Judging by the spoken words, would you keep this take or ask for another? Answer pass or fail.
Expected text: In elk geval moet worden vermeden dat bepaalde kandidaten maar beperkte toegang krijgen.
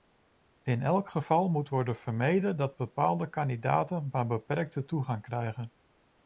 pass